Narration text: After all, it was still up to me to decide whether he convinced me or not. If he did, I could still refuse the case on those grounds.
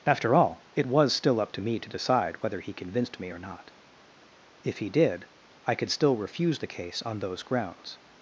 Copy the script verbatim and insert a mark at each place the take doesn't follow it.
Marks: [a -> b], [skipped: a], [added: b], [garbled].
After all, it was still up to me to decide whether he convinced me or not. If he did, I could still refuse the case on those grounds.